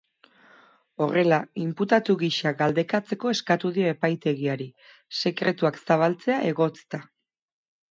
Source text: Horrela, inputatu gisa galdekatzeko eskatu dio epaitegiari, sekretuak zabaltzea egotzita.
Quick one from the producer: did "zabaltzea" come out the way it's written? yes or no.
yes